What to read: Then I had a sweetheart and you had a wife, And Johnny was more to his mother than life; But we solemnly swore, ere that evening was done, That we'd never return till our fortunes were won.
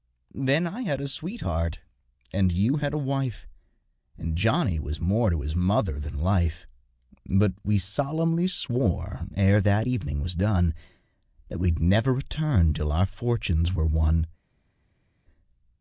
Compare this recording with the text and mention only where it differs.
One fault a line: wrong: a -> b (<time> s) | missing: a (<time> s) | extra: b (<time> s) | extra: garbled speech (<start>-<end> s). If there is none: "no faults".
no faults